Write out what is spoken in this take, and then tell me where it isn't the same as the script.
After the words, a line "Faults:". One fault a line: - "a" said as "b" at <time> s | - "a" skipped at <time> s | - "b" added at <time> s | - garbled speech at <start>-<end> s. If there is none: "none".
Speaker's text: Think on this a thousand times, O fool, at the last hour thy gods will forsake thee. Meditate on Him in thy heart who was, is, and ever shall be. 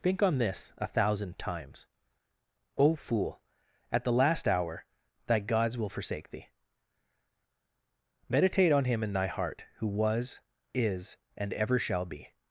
Think on this a thousand times, O fool, at the last hour thy gods will forsake thee. Meditate on Him in thy heart who was, is, and ever shall be.
Faults:
none